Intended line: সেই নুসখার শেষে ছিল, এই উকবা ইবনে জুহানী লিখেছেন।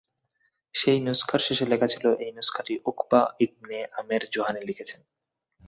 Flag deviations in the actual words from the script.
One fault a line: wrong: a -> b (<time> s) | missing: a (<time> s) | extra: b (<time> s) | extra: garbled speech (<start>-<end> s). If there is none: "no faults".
extra: লেখা (1.6 s)
extra: নুসখাটি (2.3 s)
extra: আমের (4.0 s)